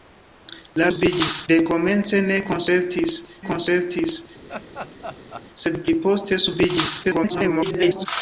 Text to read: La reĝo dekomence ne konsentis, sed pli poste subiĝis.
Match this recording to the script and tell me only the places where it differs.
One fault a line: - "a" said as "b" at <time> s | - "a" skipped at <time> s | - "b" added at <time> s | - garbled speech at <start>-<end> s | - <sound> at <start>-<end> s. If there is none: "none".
- "reĝo" said as "subiĝis" at 0.9 s
- "konsentis" added at 3.5 s
- laugh at 4.5-5.5 s
- garbled speech at 7.0-8.1 s